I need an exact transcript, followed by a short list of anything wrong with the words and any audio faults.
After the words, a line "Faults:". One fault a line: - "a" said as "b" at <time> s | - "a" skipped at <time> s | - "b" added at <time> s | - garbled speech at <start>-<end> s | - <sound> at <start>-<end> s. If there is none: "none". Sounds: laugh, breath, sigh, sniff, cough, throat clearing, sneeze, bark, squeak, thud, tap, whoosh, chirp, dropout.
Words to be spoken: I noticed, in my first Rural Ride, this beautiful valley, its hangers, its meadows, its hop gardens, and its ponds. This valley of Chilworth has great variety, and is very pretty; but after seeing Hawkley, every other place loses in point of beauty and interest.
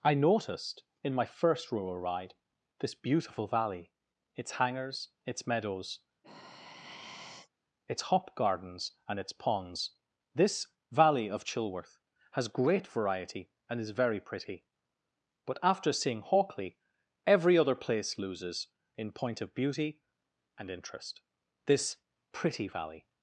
I noticed, in my first Rural Ride, this beautiful valley, its hangers, its meadows, its hop gardens, and its ponds. This valley of Chilworth has great variety, and is very pretty; but after seeing Hawkley, every other place loses in point of beauty and interest. This pretty valley
Faults:
- sigh at 6.2-7.5 s
- "This pretty valley" added at 21.7 s